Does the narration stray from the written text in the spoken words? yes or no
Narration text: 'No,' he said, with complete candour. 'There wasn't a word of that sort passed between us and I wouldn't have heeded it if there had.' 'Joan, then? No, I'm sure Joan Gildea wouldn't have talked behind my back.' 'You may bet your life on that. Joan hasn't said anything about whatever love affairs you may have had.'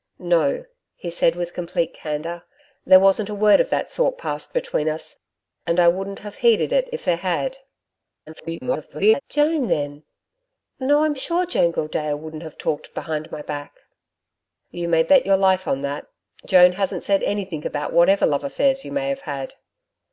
yes